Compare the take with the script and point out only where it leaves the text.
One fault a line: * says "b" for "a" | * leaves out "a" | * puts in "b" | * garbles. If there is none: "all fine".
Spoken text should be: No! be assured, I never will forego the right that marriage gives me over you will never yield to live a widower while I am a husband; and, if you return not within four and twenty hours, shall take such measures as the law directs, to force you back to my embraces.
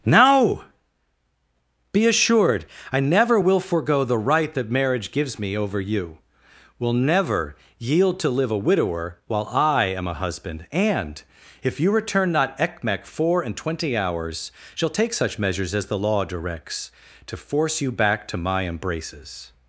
* says "ekmek" for "within"